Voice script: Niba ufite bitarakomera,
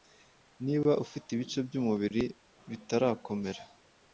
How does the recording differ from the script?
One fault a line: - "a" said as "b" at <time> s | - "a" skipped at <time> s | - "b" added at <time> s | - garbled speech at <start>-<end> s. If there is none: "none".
- "ibice by'umubiri" added at 1.3 s